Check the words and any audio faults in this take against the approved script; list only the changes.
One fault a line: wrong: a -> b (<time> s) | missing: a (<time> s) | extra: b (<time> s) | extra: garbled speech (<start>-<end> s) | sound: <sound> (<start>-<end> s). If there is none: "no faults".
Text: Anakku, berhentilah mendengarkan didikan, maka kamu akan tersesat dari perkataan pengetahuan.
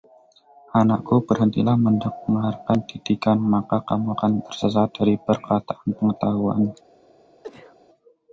sound: sneeze (7.4-7.8 s)